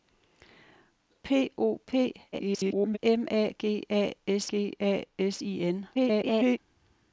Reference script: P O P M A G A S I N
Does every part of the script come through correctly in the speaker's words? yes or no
no